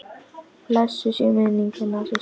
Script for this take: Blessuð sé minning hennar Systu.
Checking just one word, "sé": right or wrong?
right